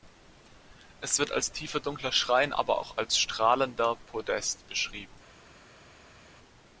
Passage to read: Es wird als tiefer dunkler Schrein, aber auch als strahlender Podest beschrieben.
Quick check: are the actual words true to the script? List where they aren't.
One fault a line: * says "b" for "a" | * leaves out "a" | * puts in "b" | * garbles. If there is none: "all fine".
all fine